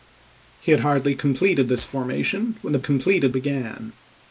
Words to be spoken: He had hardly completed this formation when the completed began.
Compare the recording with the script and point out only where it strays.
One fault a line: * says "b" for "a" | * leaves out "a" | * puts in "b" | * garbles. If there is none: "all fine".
all fine